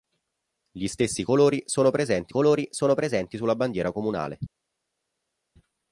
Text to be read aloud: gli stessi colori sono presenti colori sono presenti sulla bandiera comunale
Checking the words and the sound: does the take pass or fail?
pass